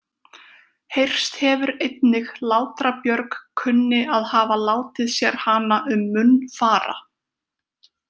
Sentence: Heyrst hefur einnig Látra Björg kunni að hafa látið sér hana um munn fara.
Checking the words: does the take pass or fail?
pass